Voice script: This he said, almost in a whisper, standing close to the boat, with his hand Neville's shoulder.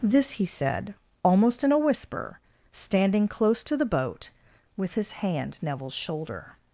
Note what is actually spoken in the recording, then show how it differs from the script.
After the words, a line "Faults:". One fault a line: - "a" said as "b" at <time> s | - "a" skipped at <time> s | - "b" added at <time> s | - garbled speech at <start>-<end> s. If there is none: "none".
This he said, almost in a whisper, standing close to the boat, with his hand Neville's shoulder.
Faults:
none